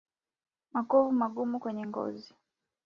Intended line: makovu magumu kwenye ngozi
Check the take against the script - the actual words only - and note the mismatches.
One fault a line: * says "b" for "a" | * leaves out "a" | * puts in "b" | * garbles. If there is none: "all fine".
all fine